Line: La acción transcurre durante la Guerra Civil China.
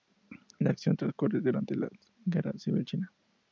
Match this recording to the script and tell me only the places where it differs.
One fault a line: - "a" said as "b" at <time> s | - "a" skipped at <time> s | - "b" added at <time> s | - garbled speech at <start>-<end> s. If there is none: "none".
none